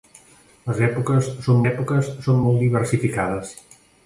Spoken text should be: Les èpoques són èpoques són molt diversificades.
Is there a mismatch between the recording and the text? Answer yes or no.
no